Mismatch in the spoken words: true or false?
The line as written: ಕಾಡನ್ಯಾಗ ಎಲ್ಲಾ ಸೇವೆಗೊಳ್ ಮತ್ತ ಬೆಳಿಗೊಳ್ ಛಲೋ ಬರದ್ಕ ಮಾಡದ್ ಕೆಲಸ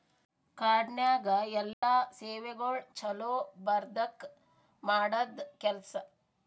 true